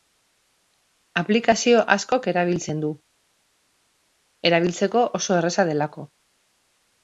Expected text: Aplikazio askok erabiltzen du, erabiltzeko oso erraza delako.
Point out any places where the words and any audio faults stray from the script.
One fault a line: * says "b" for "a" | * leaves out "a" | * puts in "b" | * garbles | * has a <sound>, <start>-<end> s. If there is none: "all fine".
all fine